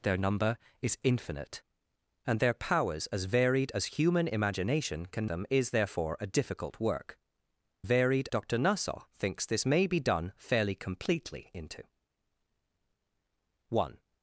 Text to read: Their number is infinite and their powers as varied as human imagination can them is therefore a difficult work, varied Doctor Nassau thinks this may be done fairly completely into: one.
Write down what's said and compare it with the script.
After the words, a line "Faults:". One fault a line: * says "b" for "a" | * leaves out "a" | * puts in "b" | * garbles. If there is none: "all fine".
Their number is infinite and their powers as varied as human imagination can them is therefore a difficult work, varied Doctor Nassau thinks this may be done fairly completely into: one.
Faults:
all fine